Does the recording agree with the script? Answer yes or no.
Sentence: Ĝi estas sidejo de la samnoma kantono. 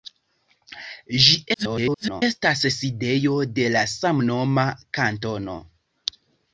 no